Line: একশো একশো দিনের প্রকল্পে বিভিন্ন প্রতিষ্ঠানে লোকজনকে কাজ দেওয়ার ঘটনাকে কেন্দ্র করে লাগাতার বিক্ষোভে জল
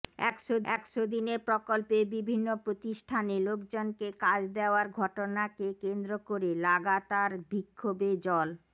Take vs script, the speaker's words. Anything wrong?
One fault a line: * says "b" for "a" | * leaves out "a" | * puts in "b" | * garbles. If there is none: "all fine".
all fine